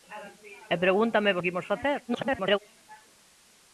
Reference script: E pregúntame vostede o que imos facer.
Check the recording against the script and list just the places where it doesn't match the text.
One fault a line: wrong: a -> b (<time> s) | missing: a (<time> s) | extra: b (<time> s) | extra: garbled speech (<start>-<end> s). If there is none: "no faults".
missing: vostede (1.4 s)
extra: garbled speech (2.1-2.6 s)